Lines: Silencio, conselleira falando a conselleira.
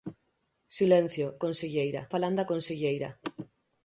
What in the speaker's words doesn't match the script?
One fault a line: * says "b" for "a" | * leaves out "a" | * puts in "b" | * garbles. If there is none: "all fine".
all fine